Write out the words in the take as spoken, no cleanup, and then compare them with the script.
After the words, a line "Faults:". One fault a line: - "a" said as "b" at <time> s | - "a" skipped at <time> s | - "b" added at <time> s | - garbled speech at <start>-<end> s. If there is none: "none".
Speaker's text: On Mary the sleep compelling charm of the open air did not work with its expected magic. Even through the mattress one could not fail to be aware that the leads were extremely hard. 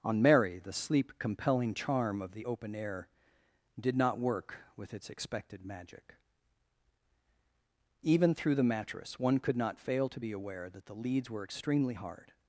On Mary the sleep compelling charm of the open air did not work with its expected magic. Even through the mattress one could not fail to be aware that the leads were extremely hard.
Faults:
none